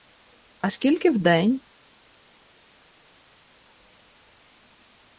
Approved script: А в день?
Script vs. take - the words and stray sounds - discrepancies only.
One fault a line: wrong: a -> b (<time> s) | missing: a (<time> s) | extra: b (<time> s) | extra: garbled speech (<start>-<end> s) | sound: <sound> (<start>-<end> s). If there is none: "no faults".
extra: скільки (0.7 s)